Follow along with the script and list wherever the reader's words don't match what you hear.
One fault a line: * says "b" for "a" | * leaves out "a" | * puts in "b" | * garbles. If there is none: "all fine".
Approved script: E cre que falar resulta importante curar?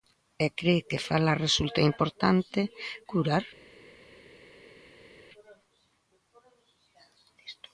all fine